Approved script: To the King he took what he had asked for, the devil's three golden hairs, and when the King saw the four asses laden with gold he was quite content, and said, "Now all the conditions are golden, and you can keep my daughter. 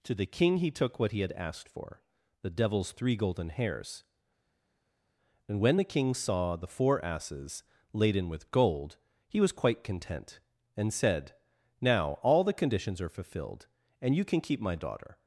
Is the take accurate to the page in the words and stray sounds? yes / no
no